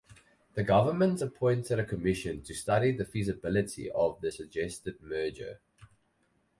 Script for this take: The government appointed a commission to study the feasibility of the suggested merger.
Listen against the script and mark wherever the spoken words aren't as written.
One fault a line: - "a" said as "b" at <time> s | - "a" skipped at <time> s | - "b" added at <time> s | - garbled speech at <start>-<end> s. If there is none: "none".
none